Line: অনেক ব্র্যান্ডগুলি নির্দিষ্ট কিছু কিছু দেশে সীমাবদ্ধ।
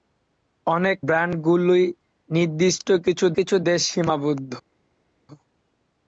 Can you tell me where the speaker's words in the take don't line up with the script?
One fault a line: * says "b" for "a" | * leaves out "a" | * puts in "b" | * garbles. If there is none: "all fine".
all fine